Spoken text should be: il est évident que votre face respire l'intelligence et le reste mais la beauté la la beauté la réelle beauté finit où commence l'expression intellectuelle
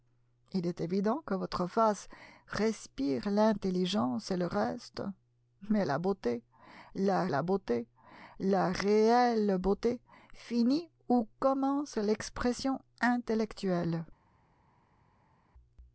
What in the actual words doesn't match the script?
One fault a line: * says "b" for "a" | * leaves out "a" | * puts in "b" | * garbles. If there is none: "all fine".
all fine